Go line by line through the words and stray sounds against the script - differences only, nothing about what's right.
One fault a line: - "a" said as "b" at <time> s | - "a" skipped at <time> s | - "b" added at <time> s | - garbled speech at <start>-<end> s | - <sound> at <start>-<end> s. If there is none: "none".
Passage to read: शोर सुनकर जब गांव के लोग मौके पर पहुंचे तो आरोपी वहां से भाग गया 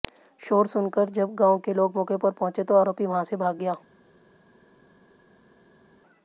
none